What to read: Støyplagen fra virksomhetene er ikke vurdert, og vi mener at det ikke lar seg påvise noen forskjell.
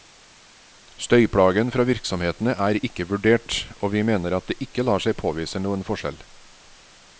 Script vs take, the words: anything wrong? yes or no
no